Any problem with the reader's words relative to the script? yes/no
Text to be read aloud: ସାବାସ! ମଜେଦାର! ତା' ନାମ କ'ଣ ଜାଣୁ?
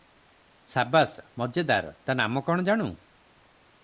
no